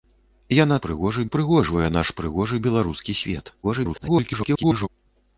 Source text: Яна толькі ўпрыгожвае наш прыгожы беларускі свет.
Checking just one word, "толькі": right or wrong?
wrong